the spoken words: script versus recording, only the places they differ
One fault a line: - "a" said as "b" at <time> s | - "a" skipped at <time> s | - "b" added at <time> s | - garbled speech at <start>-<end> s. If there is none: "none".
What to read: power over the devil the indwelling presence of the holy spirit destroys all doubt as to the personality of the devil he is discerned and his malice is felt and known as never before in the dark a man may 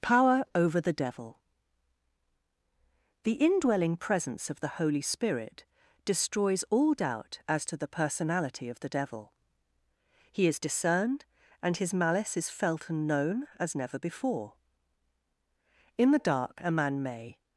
none